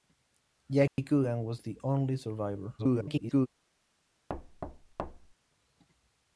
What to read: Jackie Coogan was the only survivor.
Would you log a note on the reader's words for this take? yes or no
yes